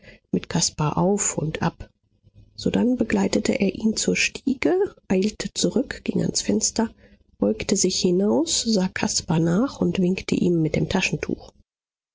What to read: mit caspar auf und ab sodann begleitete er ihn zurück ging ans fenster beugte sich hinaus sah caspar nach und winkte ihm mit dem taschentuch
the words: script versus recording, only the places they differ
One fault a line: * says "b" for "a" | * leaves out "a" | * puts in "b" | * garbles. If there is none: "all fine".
* puts in "zur stiege eilte"